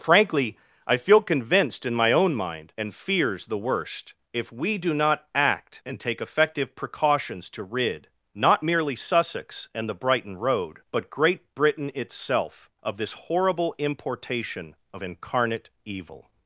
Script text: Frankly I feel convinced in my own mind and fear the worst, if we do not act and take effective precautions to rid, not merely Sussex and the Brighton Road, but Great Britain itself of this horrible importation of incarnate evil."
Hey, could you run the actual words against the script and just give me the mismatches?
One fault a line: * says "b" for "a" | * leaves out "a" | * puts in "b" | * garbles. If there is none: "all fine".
* says "fears" for "fear"